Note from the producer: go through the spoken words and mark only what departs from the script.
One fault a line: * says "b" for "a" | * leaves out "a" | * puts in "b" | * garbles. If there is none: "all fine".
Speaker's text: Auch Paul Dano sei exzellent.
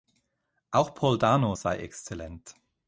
all fine